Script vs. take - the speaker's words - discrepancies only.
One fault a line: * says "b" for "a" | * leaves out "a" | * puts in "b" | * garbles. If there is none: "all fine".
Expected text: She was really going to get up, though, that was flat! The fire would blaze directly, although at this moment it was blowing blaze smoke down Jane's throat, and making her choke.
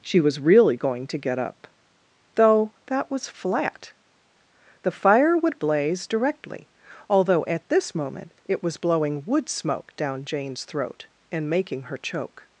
* says "wood" for "blaze"